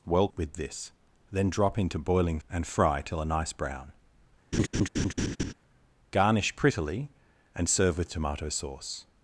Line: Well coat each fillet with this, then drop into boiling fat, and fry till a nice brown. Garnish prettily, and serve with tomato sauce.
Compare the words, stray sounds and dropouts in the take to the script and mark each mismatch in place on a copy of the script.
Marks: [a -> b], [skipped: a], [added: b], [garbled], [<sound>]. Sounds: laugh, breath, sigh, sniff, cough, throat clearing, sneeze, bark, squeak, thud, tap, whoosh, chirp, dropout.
Well [skipped: coat each fillet] with this, then drop into boiling [skipped: fat,] and fry till a nice brown. [laugh] Garnish prettily, and serve with tomato sauce.